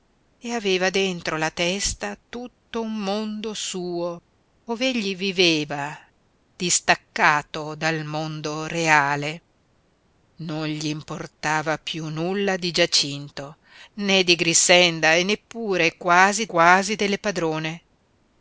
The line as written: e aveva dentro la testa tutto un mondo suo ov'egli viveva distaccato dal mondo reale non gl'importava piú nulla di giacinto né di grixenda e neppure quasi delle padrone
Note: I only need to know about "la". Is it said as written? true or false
true